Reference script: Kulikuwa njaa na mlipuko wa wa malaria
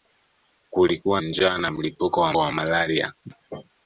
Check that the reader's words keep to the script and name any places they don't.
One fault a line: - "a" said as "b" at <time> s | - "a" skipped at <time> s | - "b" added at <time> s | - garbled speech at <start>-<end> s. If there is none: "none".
none